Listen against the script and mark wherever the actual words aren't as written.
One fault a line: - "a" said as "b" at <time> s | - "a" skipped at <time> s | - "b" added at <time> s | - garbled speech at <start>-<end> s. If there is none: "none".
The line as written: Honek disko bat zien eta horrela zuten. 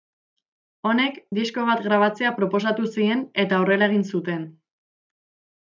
- "grabatzea proposatu" added at 1.9 s
- "egin" added at 3.9 s